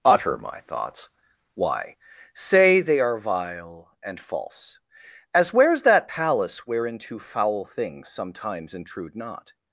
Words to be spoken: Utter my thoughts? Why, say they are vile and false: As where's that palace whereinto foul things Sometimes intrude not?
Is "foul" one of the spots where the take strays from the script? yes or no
no